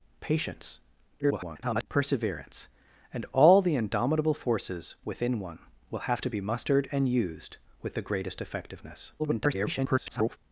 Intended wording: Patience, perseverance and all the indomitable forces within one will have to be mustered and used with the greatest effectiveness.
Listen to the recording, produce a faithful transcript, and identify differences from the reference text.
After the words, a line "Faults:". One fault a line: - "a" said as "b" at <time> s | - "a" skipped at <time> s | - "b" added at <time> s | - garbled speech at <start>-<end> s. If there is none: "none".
Patience, [garbled] perseverance and all the indomitable forces within one will have to be mustered and used with the greatest effectiveness. [garbled]
Faults:
- garbled speech at 1.2-1.9 s
- garbled speech at 9.2-10.4 s